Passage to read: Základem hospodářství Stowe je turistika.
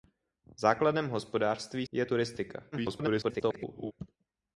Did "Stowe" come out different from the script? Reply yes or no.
yes